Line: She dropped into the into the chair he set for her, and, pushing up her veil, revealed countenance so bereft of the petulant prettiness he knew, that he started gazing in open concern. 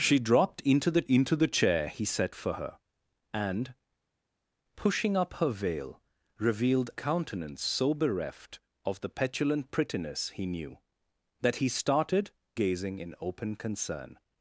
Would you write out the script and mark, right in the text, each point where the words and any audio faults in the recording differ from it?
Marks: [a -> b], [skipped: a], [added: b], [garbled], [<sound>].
She dropped into the into the chair he set for her, and, pushing up her veil, revealed countenance so bereft of the petulant prettiness he knew, that he started gazing in open concern.